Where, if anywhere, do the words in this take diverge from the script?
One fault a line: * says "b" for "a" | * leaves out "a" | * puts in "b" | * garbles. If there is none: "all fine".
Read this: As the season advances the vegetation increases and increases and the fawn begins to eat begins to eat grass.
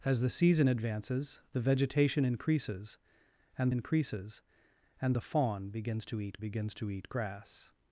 all fine